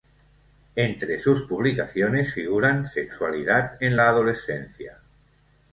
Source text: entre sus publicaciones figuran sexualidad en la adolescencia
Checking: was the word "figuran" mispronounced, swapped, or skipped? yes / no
no